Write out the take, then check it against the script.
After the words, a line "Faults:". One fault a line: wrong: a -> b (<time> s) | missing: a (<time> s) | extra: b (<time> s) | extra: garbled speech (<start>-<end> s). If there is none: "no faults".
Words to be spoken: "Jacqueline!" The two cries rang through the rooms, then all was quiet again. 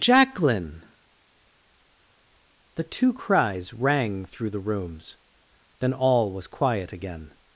"Jacqueline!" The two cries rang through the rooms, then all was quiet again.
Faults:
no faults